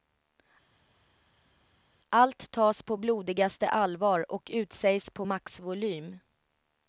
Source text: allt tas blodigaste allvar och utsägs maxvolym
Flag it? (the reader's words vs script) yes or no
yes